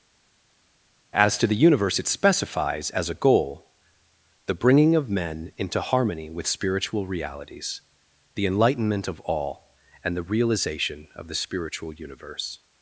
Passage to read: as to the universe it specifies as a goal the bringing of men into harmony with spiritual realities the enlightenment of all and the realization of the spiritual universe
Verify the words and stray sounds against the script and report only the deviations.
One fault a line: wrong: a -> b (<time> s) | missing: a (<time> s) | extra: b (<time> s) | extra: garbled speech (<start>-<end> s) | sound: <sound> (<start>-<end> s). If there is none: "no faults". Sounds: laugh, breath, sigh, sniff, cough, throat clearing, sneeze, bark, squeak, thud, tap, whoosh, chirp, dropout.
no faults